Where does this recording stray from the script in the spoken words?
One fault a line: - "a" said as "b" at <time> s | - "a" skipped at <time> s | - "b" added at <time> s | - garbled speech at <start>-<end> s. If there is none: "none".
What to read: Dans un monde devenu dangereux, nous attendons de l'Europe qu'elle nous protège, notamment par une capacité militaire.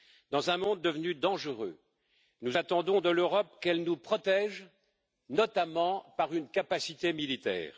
none